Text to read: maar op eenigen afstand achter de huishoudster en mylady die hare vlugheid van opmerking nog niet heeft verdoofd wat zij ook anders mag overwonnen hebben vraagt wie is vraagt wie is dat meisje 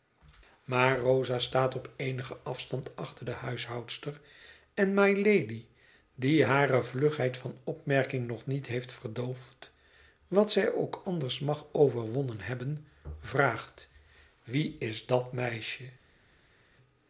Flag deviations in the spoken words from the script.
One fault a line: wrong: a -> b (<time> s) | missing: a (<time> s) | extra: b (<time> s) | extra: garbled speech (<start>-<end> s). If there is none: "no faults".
extra: rosa staat (1.0 s)
missing: vraagt wie is (15.0 s)